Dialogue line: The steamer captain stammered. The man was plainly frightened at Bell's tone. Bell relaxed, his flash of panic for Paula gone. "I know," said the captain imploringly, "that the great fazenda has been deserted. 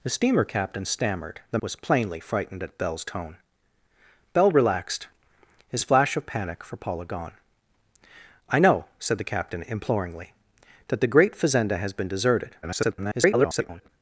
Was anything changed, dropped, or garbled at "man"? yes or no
yes